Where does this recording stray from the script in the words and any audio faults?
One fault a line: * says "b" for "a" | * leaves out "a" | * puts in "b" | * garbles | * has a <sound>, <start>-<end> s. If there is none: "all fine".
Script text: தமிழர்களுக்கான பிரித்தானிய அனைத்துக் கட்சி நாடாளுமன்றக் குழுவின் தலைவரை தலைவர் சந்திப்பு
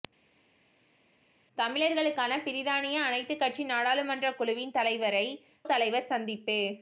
all fine